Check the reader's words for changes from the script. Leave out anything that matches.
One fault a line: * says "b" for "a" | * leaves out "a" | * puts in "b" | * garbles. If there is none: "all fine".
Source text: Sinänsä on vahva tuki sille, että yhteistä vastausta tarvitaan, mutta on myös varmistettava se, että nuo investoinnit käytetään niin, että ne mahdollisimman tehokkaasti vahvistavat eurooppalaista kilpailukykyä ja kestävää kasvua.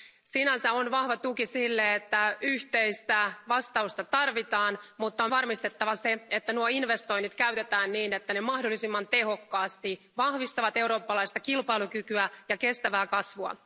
* leaves out "myös"